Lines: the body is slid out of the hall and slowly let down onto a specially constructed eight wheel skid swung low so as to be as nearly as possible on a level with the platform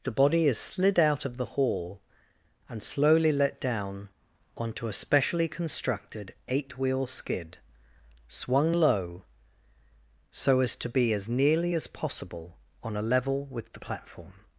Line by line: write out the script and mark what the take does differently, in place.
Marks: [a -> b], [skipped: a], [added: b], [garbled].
the body is slid out of the hall and slowly let down onto a specially constructed eight wheel skid swung low so as to be as nearly as possible on a level with the platform